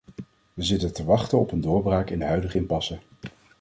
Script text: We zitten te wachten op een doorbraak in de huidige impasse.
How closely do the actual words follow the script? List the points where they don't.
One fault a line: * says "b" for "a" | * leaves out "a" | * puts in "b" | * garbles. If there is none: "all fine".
all fine